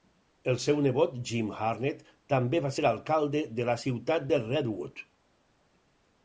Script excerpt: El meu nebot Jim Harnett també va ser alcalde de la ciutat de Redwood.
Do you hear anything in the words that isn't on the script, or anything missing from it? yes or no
yes